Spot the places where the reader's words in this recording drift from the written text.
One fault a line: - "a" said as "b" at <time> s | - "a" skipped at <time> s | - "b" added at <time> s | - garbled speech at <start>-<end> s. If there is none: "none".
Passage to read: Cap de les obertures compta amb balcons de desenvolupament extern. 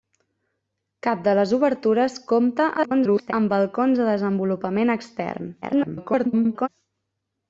- garbled speech at 2.8-3.3 s
- garbled speech at 5.6-6.7 s